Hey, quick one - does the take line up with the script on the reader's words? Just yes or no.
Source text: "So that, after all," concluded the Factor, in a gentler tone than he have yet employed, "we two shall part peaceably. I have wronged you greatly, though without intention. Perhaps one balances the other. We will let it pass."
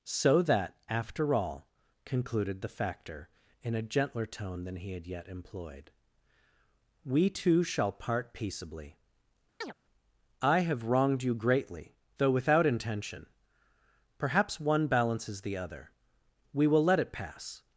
no